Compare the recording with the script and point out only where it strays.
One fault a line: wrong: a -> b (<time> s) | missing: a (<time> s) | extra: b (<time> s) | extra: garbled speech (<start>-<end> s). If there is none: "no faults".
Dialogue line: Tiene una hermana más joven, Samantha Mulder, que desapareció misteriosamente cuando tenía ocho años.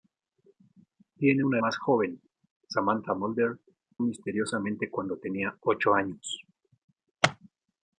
missing: hermana (1.6 s)
missing: que desapareció (3.6 s)